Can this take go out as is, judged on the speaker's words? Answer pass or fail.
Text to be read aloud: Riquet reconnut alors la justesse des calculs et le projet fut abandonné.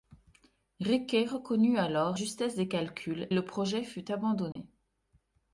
fail